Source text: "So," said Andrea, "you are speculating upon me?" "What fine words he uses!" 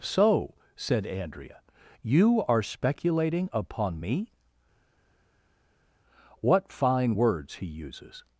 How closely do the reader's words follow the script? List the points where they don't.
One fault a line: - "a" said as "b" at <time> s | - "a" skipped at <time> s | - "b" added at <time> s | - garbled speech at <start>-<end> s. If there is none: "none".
none